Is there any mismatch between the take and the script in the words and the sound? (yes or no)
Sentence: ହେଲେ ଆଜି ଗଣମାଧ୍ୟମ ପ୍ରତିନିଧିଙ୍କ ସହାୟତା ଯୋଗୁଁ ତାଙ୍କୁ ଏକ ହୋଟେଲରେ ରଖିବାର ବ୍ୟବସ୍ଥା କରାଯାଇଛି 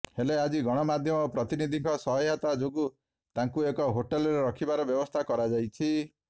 no